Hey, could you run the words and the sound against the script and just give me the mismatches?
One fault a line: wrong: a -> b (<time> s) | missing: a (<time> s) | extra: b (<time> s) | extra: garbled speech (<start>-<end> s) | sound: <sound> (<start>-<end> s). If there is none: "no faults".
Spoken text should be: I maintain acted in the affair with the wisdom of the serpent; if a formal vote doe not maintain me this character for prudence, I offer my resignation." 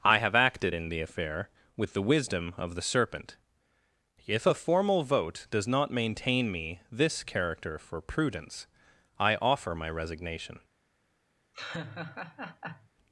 wrong: maintain -> have (0.2 s)
wrong: doe -> does (5.5 s)
sound: laugh (11.5-12.9 s)